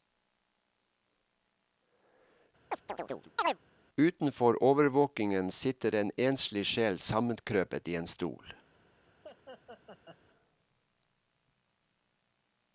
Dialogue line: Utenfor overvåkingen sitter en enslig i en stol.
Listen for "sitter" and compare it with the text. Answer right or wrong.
right